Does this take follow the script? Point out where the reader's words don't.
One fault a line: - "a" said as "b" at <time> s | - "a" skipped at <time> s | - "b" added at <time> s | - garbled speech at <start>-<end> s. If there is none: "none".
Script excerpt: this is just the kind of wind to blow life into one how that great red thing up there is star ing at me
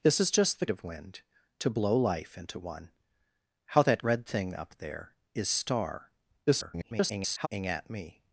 - "kind" skipped at 0.7 s
- "great" skipped at 4.0 s
- garbled speech at 6.5-7.5 s